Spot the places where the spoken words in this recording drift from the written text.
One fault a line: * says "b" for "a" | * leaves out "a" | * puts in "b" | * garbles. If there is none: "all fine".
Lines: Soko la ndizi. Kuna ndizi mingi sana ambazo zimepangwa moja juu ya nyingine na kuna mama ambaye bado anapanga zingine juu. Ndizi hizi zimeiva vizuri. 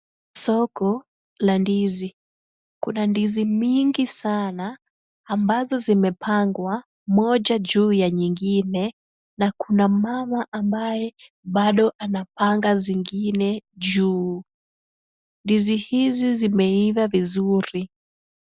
all fine